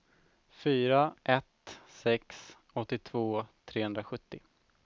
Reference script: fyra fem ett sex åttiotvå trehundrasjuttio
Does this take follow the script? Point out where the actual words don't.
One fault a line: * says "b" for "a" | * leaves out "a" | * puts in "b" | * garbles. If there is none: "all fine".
* leaves out "fem"